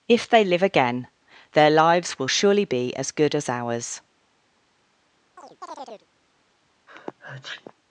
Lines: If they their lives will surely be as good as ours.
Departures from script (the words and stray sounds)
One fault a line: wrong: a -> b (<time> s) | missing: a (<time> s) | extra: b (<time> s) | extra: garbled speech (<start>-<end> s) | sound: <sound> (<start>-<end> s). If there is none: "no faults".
extra: live again (0.4 s)
sound: chirp (5.4-6.1 s)
sound: sneeze (6.9-7.7 s)